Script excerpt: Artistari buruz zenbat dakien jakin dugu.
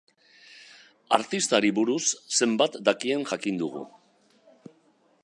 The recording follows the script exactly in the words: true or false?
true